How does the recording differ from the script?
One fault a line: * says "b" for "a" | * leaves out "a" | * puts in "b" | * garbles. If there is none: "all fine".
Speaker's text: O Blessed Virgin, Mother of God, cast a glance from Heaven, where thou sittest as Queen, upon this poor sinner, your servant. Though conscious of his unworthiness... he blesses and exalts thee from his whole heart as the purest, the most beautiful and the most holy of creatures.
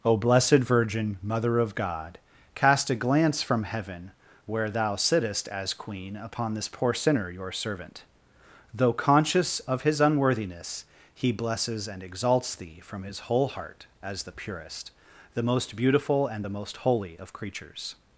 all fine